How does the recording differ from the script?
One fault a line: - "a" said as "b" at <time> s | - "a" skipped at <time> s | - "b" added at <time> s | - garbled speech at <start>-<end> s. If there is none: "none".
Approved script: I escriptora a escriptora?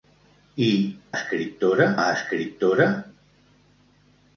none